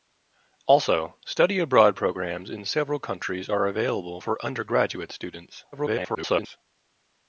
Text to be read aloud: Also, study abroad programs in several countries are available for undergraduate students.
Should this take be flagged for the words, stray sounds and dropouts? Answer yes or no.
yes